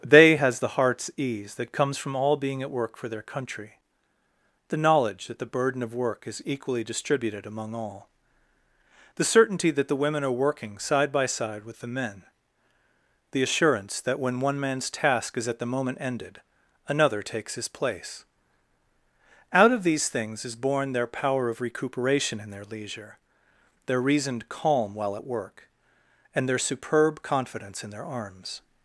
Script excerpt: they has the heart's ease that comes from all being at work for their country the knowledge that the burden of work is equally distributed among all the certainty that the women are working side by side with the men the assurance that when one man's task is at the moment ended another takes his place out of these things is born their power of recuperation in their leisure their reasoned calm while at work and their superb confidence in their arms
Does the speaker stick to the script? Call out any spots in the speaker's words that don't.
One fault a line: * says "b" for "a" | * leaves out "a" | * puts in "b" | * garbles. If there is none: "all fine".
all fine